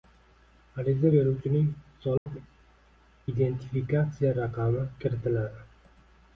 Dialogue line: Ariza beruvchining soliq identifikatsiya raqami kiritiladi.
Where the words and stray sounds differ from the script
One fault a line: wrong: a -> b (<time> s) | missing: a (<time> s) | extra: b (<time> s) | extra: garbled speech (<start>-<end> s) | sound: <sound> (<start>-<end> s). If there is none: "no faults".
sound: dropout (2.2-2.3 s)